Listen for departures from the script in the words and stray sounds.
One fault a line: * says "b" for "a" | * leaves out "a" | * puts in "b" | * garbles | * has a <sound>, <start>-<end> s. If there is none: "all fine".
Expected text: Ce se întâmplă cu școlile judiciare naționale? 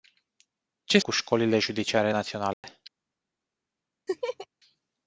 * leaves out "se întâmplă"
* has a dropout, 2.5-2.6 s
* has a laugh, 4.1-4.5 s